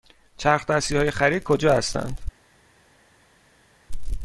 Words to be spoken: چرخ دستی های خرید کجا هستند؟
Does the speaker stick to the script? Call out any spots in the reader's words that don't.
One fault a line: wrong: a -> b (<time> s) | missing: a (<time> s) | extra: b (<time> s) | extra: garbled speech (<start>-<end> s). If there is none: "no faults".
no faults